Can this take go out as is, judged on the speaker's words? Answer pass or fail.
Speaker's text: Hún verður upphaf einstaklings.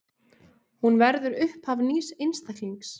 fail